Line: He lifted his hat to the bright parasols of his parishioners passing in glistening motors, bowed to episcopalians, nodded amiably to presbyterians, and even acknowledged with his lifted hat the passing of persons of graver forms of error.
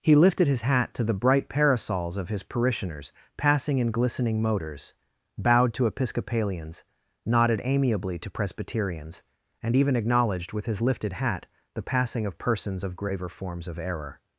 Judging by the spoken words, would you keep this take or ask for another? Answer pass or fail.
pass